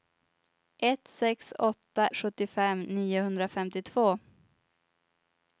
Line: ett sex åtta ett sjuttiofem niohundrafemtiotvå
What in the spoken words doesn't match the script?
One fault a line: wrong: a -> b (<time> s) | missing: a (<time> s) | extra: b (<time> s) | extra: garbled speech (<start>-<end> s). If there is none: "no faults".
missing: ett (2.1 s)